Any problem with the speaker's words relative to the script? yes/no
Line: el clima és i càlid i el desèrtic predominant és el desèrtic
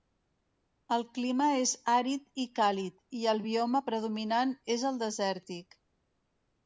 yes